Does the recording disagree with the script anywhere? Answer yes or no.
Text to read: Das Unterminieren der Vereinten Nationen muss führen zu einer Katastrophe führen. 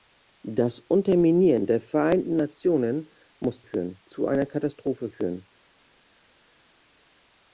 no